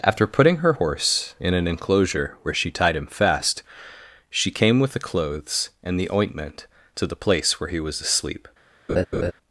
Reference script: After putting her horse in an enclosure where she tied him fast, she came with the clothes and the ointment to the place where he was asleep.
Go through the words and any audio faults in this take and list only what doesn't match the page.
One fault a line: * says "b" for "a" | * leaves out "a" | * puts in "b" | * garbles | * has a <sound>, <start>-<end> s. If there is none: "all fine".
* has a laugh, 8.9-9.3 s